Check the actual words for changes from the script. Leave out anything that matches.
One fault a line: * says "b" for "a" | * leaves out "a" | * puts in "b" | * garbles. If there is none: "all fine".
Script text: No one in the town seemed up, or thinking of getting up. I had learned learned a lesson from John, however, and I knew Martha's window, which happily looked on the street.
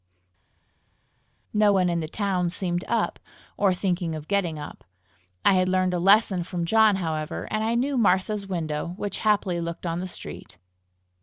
* leaves out "learned"